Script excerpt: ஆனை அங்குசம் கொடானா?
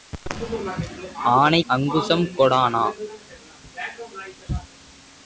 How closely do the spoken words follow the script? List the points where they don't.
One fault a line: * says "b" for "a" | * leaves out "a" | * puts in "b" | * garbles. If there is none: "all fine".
all fine